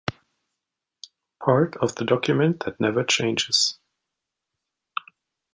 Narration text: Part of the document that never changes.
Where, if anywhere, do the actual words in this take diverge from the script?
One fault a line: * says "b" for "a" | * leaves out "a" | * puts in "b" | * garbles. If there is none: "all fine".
all fine